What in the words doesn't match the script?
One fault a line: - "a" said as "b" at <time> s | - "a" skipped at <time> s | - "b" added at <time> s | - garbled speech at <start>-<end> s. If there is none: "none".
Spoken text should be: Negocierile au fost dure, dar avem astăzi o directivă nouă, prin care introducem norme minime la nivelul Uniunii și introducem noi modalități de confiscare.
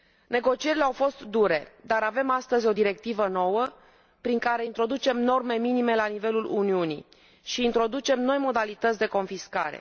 none